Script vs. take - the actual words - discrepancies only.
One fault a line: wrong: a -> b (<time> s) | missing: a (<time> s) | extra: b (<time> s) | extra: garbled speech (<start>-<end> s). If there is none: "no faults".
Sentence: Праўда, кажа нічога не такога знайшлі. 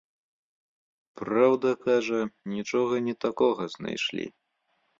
no faults